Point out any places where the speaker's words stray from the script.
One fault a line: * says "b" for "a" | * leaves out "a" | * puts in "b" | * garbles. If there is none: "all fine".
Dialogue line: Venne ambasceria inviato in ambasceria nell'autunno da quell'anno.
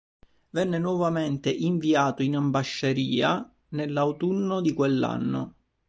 * says "nuovamente" for "ambasceria"
* says "di" for "da"